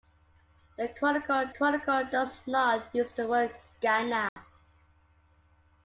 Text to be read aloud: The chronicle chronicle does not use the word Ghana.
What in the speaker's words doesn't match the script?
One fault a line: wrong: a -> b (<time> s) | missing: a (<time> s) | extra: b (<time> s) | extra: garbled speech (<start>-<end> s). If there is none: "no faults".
no faults